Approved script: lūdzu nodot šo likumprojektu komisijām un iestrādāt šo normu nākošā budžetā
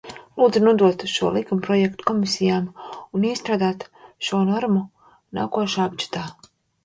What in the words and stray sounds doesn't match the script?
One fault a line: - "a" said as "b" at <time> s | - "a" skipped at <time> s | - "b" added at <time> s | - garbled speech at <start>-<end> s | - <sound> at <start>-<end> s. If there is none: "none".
none